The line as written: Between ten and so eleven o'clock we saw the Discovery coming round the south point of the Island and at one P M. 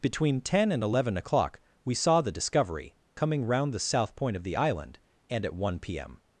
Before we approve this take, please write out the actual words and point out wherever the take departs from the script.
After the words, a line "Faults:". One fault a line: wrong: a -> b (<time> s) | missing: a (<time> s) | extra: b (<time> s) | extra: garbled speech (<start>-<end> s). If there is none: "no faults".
Between ten and eleven o'clock we saw the Discovery coming round the south point of the Island and at one P M.
Faults:
missing: so (0.8 s)